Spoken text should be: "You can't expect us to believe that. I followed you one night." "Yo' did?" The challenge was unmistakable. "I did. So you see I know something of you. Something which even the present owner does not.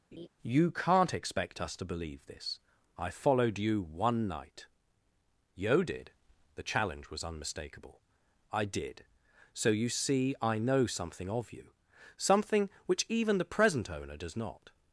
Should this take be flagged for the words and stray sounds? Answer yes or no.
yes